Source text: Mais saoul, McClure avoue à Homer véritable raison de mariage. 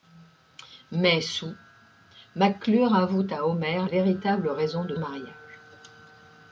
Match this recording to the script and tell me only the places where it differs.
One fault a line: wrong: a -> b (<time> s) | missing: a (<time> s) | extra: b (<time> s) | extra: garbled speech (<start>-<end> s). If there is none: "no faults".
no faults